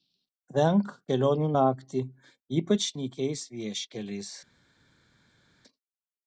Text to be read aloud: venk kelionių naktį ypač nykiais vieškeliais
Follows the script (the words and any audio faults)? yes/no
yes